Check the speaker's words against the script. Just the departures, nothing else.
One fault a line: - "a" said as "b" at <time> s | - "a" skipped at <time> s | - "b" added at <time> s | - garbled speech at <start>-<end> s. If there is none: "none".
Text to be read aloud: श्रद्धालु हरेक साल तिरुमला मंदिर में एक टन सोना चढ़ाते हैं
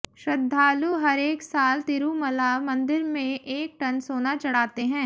none